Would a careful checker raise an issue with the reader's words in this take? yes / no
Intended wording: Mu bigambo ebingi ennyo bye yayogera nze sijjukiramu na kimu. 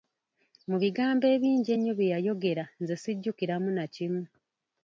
no